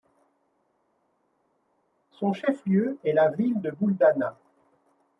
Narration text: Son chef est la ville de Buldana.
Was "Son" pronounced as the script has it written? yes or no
yes